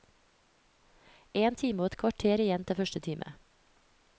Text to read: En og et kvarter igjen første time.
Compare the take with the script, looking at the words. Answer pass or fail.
fail